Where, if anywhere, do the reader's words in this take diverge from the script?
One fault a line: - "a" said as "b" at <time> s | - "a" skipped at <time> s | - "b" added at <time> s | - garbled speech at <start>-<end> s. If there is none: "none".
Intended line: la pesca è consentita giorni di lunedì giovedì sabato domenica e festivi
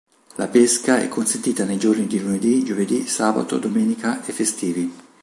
- "nei" added at 1.6 s